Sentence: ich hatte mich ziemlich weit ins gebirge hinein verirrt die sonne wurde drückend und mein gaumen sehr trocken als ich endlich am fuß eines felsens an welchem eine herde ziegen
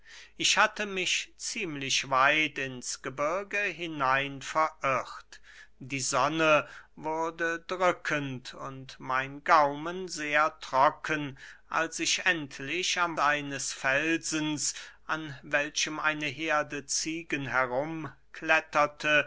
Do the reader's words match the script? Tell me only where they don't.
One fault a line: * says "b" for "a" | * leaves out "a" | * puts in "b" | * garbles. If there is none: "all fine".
* leaves out "fuß"